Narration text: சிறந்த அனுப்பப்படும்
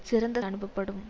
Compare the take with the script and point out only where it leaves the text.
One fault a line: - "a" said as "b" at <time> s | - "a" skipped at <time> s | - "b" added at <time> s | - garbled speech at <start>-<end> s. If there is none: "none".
none